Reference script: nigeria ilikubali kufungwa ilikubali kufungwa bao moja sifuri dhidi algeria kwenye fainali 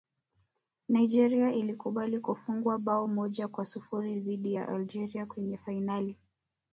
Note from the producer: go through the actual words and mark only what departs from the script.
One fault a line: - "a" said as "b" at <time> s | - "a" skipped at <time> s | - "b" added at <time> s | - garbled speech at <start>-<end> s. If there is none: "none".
- "ilikubali kufungwa" skipped at 2.8 s
- "kwa" added at 3.5 s
- "ya" added at 4.5 s